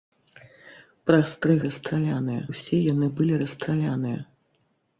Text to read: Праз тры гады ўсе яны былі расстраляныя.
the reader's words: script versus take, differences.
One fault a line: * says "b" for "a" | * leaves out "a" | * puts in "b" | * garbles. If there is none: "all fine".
* says "расстраляныя" for "гады"